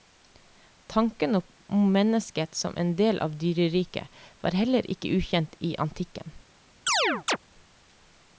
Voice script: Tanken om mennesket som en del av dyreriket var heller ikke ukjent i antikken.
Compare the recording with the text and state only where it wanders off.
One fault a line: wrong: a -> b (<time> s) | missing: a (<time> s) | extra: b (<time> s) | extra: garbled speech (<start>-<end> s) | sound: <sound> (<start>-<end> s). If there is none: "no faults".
sound: chirp (6.9-7.4 s)